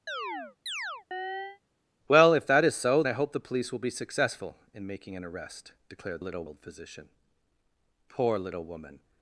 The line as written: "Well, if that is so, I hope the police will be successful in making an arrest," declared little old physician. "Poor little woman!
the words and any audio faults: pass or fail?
fail